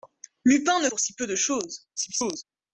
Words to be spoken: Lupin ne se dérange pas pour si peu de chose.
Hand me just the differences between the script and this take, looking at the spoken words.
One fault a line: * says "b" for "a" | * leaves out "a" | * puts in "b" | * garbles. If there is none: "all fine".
* leaves out "se dérange pas"
* garbles